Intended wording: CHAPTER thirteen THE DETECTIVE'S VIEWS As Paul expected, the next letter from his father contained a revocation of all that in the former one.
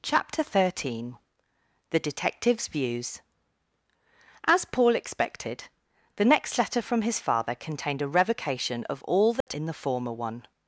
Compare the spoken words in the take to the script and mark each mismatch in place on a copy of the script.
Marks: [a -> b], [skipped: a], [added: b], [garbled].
CHAPTER thirteen THE DETECTIVE'S VIEWS As Paul expected, the next letter from his father contained a revocation of all that in the former one.